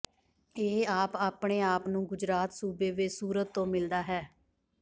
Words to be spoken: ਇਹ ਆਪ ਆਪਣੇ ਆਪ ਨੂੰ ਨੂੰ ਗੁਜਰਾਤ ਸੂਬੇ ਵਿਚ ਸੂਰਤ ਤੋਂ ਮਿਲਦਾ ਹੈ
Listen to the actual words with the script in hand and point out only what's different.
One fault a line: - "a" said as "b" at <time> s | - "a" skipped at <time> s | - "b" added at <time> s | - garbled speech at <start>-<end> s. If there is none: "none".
- "ਨੂੰ" skipped at 2.0 s